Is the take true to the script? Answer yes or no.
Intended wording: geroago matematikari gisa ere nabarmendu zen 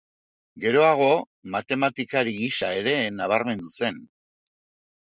yes